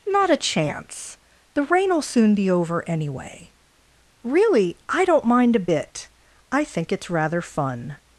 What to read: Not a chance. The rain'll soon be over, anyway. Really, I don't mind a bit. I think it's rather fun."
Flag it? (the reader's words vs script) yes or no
no